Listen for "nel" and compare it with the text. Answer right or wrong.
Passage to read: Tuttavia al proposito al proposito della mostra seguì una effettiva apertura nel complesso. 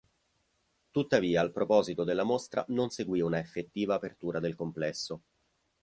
wrong